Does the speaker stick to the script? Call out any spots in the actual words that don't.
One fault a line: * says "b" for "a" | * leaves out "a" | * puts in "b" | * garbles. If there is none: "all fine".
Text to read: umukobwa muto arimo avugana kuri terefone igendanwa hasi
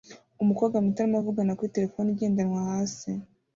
all fine